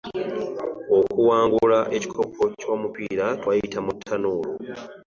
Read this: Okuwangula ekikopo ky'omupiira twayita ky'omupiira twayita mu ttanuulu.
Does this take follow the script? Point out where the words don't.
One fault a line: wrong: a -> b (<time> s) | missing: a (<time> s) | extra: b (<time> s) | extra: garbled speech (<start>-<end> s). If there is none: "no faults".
missing: ky'omupiira twayita (3.8 s)